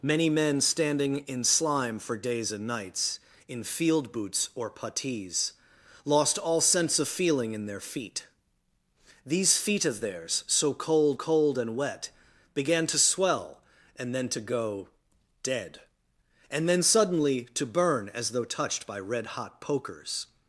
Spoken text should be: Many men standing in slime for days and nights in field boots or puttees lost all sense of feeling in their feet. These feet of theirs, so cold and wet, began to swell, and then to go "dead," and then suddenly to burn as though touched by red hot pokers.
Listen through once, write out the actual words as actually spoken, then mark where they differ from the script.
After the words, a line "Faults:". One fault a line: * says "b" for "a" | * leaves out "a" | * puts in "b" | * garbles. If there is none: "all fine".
Many men standing in slime for days and nights in field boots or puttees lost all sense of feeling in their feet. These feet of theirs, so cold cold and wet, began to swell, and then to go "dead," and then suddenly to burn as though touched by red hot pokers.
Faults:
* puts in "cold"